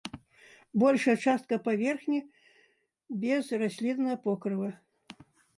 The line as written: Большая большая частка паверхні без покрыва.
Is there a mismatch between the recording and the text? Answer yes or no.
yes